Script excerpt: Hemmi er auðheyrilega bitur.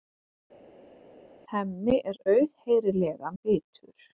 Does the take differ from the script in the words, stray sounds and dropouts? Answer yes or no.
no